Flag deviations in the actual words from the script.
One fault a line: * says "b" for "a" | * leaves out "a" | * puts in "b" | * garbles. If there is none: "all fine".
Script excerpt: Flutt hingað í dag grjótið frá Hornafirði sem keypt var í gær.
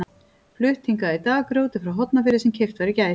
all fine